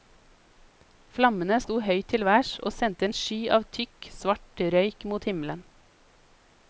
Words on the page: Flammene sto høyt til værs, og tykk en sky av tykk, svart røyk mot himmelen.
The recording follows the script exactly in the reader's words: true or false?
false